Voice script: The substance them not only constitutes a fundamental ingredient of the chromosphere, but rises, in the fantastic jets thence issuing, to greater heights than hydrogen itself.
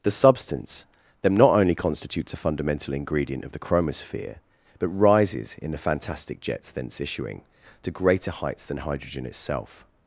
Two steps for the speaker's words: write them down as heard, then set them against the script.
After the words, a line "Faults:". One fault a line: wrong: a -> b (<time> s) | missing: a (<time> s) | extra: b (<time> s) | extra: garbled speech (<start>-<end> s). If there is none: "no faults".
The substance them not only constitutes a fundamental ingredient of the chromosphere, but rises, in the fantastic jets thence issuing, to greater heights than hydrogen itself.
Faults:
no faults